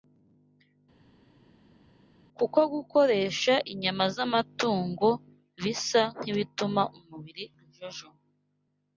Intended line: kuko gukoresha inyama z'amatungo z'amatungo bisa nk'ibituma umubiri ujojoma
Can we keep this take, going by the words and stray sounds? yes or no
no